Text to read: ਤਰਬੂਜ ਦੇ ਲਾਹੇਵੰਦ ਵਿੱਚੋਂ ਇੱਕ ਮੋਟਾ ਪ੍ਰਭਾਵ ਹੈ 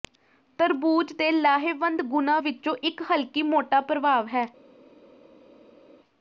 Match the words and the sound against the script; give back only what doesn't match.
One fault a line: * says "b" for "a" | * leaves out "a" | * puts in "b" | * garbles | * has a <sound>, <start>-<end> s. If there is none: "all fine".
* puts in "ਗੁਣਾਂ"
* puts in "ਹਲਕੀ"